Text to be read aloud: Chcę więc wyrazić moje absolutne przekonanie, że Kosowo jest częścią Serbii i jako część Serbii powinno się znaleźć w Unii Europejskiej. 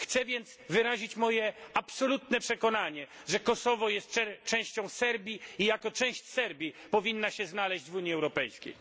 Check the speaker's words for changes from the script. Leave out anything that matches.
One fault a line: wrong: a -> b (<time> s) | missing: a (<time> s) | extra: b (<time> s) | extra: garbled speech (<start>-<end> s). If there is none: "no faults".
no faults